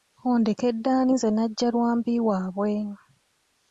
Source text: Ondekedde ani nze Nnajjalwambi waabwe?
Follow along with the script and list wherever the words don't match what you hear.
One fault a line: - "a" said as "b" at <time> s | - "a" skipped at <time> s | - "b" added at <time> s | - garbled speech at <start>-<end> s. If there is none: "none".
none